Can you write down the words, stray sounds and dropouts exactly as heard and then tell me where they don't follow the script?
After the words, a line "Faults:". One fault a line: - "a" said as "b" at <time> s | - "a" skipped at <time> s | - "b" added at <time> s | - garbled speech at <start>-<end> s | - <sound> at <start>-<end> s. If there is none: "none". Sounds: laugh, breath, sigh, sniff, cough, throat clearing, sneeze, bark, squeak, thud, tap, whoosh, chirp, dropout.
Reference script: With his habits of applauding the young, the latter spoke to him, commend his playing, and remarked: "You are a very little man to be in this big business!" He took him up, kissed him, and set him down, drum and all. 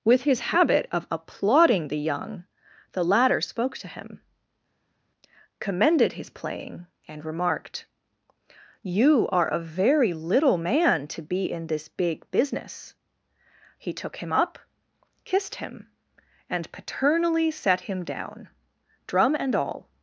With his habit of applauding the young, the latter spoke to him, commended his playing, and remarked: "You are a very little man to be in this big business!" He took him up, kissed him, and paternally set him down, drum and all.
Faults:
- "habits" said as "habit" at 0.5 s
- "commend" said as "commended" at 5.6 s
- "paternally" added at 16.7 s